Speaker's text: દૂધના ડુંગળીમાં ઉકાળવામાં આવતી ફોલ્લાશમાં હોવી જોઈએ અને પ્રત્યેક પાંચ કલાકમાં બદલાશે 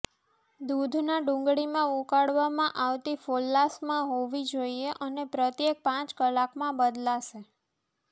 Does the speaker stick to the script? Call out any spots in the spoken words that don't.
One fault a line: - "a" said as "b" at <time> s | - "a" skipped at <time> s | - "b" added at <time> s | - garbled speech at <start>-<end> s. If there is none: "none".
none